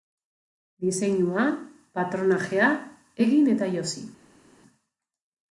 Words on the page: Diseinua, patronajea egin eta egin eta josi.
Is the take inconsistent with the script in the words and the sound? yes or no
yes